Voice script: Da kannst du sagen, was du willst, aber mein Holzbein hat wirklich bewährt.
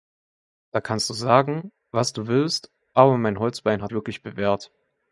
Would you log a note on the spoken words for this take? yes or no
no